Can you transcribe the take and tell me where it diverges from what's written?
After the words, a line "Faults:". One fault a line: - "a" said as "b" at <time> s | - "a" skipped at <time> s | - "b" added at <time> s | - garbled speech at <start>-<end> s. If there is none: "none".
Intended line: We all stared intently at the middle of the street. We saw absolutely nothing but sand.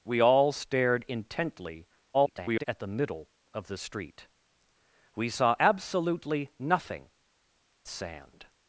We all stared intently [garbled] at the middle of the street. We saw absolutely nothing sand.
Faults:
- garbled speech at 2.1-2.6 s
- "but" skipped at 7.1 s